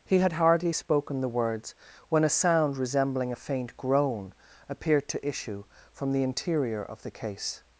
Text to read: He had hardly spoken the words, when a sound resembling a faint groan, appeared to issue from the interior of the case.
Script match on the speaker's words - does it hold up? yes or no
yes